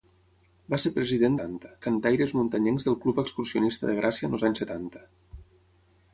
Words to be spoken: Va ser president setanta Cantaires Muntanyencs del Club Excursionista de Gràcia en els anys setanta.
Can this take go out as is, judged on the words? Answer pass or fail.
pass